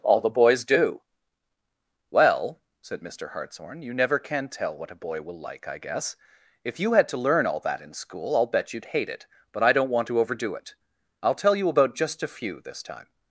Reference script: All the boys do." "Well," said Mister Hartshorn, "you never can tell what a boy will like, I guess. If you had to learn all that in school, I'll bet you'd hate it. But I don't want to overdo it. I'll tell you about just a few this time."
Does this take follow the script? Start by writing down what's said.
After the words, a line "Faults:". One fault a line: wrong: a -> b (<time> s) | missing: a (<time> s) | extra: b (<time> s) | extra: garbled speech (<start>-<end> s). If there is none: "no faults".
All the boys do." "Well," said Mister Hartshorn, "you never can tell what a boy will like, I guess. If you had to learn all that in school, I'll bet you'd hate it. But I don't want to overdo it. I'll tell you about just a few this time."
Faults:
no faults